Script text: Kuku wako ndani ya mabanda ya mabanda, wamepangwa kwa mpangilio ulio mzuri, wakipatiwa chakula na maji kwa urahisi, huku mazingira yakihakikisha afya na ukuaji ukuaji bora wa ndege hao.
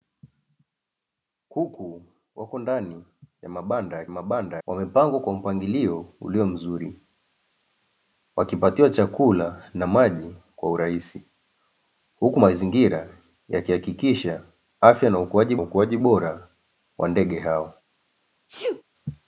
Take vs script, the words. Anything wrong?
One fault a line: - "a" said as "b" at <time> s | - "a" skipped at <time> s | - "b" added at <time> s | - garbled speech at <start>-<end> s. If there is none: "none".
none